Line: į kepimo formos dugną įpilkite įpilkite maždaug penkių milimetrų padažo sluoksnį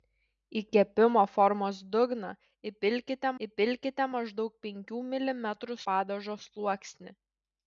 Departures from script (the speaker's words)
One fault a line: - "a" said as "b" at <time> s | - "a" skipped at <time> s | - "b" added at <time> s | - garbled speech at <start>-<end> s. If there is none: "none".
none